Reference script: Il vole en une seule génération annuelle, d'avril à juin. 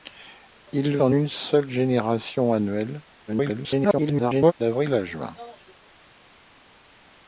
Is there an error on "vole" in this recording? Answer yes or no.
yes